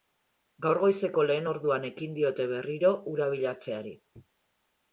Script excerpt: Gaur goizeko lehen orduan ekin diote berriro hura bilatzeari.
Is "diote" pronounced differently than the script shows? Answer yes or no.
no